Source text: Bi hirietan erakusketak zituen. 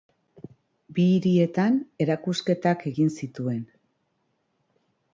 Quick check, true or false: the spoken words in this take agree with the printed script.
false